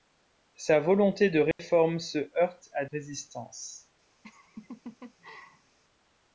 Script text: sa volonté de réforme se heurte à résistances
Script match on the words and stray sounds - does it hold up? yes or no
no